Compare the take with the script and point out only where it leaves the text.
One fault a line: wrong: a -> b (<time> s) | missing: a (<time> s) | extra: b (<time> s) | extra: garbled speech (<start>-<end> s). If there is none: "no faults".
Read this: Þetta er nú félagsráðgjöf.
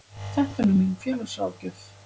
extra: mín (0.8 s)